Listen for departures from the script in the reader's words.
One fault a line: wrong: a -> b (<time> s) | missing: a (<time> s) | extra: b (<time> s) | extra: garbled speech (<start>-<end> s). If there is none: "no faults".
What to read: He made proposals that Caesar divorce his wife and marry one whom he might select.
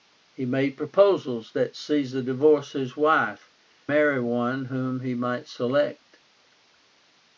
missing: and (3.5 s)